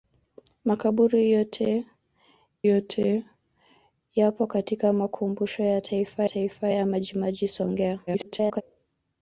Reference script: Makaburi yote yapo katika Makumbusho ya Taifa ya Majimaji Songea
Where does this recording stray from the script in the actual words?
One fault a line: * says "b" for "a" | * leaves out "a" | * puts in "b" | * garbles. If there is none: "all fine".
* puts in "yote"
* puts in "Taifa"
* garbles